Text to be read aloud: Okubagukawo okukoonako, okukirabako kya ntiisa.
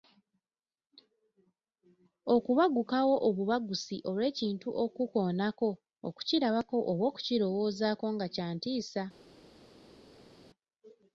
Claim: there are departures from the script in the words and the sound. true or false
true